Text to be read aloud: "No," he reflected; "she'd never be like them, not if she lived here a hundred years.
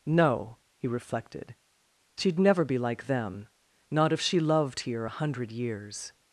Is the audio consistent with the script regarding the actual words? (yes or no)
no